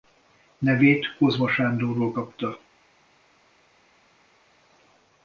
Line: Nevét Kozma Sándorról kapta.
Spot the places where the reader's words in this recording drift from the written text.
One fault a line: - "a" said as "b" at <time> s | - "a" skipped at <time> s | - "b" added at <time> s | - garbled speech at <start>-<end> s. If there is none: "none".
none